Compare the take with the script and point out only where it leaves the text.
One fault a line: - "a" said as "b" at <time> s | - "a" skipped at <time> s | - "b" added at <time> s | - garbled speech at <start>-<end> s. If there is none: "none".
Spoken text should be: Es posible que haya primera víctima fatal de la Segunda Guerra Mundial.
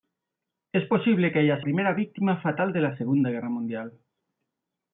none